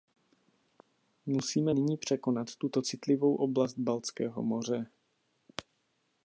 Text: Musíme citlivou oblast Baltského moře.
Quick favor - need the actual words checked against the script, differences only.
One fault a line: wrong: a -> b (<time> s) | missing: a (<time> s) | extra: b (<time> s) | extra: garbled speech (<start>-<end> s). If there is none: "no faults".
extra: nyní překonat tuto (1.7 s)